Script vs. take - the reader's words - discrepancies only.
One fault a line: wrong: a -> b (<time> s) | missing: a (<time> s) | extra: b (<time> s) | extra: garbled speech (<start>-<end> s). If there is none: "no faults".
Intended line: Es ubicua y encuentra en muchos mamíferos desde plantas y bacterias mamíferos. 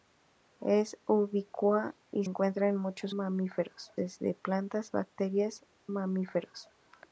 no faults